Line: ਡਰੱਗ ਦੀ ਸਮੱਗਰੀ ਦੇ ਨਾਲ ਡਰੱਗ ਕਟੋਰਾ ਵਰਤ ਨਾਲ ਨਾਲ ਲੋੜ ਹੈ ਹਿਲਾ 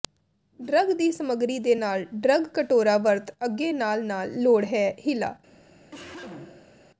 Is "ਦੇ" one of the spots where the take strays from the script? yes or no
no